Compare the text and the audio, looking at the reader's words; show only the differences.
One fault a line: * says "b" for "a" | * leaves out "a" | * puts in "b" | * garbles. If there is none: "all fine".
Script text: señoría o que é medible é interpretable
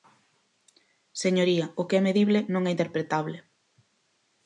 * puts in "non"